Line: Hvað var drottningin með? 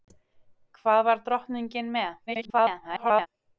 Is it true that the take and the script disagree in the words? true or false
true